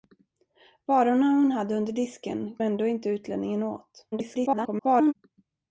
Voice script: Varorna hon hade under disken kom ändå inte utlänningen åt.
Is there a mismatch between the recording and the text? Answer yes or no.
yes